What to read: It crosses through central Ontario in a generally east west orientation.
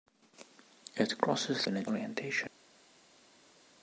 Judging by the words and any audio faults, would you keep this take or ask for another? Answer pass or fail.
fail